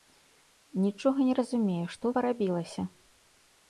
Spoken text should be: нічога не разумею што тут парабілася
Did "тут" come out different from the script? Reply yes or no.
yes